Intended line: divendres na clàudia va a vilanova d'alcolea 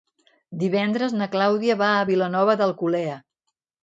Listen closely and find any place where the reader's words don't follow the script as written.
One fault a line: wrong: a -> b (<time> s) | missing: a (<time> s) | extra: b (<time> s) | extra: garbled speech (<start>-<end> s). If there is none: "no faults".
no faults